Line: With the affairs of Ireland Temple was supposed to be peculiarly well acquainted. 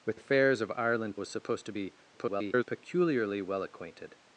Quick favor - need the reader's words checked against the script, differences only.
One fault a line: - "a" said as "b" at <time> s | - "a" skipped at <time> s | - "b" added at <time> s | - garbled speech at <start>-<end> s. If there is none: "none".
- "the" skipped at 0.2 s
- "Temple" skipped at 1.2 s
- garbled speech at 2.1-2.6 s